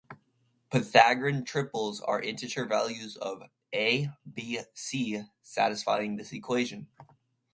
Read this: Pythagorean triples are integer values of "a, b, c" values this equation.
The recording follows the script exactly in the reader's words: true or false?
false